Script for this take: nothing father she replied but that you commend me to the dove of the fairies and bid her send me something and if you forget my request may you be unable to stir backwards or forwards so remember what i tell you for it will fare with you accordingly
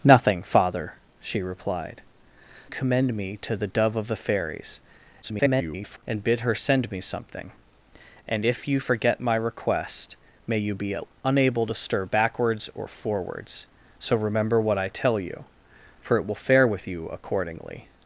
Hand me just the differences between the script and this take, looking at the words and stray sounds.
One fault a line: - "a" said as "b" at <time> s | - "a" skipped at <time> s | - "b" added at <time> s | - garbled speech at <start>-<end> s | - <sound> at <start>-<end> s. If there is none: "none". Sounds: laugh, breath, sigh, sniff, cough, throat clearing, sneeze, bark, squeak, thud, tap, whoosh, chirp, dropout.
- "but that you" skipped at 2.0 s
- garbled speech at 5.2-6.0 s